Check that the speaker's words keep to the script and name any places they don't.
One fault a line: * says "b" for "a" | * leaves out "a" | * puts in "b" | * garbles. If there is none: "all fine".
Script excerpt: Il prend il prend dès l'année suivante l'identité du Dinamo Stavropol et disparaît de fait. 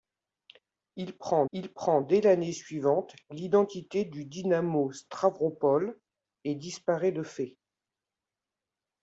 all fine